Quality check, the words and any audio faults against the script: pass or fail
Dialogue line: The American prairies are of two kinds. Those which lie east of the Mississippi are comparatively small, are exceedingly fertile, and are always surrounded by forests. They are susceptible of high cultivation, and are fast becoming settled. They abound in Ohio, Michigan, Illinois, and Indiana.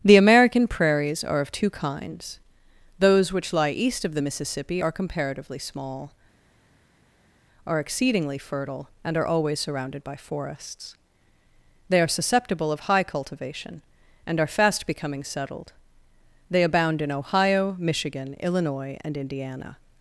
pass